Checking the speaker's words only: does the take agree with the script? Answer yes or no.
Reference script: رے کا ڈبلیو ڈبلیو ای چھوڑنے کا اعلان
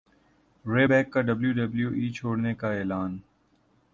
no